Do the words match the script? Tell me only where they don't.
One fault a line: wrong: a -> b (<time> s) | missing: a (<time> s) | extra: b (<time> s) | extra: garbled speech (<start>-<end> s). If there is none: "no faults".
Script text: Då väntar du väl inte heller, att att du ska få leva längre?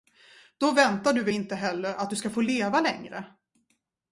missing: att (2.1 s)